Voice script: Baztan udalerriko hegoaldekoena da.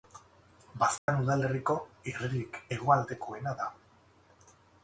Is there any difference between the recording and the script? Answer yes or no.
yes